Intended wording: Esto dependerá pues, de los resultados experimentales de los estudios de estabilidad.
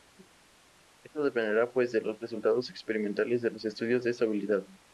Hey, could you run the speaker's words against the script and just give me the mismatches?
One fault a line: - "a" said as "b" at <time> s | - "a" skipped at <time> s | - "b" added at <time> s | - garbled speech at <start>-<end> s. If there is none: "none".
none